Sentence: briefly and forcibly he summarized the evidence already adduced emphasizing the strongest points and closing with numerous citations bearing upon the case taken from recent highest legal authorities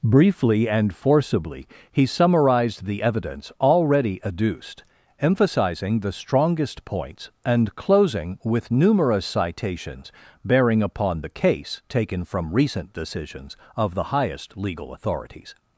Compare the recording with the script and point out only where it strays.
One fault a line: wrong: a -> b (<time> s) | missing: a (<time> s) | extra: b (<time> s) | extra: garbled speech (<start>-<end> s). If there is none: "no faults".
extra: decisions of the (12.9 s)